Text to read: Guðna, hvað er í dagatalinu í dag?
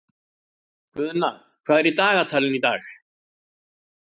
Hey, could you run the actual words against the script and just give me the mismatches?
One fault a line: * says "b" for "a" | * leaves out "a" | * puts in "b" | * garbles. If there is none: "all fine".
all fine